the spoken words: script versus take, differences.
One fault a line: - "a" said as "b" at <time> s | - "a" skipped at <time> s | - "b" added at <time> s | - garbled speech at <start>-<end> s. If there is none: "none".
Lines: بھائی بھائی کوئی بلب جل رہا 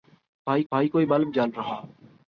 none